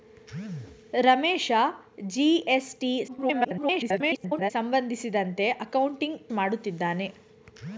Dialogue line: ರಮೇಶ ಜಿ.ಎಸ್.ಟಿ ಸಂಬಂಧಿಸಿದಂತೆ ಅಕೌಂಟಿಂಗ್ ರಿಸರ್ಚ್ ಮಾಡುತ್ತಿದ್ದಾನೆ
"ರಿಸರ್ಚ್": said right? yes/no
no